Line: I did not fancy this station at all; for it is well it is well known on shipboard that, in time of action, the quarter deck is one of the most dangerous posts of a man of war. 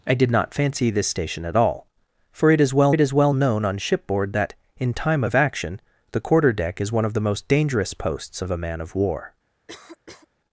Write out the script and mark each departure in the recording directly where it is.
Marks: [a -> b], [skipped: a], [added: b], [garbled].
I did not fancy this station at all; for it is well it is well known on shipboard that, in time of action, the quarter deck is one of the most dangerous posts of a man of war.